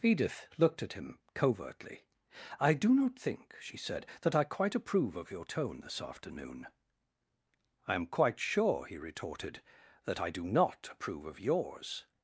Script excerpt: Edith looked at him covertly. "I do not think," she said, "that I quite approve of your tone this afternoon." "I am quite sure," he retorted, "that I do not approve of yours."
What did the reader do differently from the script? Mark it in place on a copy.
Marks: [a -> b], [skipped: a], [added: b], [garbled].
Edith looked at him covertly. "I do not think," she said, "that I quite approve of your tone this afternoon." "I am quite sure," he retorted, "that I do not approve of yours."